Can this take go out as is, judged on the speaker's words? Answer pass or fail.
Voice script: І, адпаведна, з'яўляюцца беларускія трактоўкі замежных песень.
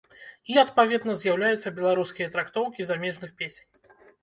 pass